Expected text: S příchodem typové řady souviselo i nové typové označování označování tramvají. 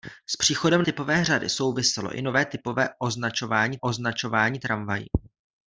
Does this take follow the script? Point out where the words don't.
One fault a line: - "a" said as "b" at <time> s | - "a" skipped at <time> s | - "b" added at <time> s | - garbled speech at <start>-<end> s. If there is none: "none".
none